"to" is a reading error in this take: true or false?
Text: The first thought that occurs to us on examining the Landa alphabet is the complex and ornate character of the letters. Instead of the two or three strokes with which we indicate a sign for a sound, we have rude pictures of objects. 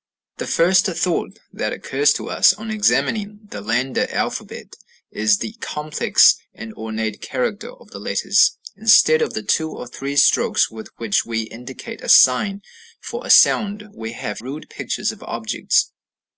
false